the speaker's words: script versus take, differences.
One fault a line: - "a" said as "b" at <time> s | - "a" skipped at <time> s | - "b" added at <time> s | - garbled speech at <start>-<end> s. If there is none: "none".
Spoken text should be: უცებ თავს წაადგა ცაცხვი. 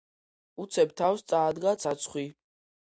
none